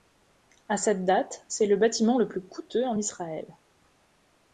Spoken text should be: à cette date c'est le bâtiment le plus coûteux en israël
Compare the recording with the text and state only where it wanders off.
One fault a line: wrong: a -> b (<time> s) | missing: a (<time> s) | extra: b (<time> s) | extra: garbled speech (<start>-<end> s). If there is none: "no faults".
no faults